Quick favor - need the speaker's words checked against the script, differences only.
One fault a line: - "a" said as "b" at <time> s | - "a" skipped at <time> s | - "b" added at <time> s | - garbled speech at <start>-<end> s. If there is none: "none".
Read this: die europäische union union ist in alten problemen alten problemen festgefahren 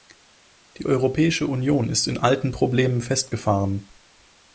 - "union" skipped at 1.9 s
- "alten problemen" skipped at 3.0 s